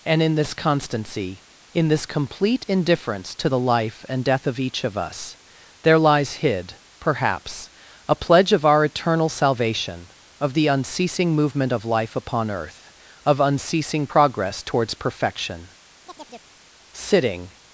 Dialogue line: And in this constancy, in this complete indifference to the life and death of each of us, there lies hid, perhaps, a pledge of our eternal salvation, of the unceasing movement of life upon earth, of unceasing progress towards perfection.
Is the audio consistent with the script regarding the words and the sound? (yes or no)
no